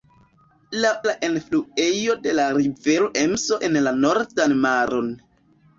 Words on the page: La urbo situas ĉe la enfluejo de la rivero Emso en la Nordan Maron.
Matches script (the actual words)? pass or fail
fail